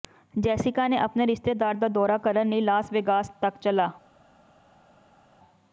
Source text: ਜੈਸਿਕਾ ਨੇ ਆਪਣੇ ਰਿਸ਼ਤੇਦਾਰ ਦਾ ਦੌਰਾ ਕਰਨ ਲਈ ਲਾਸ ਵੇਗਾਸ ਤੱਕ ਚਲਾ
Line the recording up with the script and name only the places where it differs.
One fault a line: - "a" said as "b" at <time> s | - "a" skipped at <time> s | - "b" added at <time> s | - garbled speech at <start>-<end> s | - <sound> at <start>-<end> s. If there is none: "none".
none